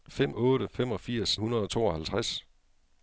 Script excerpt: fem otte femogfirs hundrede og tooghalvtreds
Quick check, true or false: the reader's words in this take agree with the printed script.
true